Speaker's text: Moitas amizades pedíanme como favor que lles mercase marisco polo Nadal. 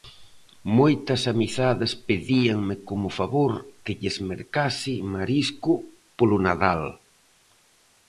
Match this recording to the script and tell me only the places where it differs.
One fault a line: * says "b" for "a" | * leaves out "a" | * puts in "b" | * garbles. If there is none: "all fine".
all fine